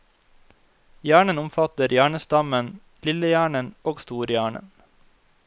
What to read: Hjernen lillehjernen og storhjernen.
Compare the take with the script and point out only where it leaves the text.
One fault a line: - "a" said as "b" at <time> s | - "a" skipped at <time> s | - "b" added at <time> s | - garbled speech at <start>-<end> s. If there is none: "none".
- "omfatter hjernestammen" added at 1.4 s